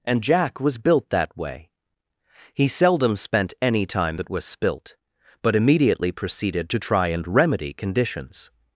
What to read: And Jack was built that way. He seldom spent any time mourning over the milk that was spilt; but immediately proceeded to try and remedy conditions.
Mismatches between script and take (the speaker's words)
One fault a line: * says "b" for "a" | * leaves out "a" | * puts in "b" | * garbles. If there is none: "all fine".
* leaves out "mourning over the milk"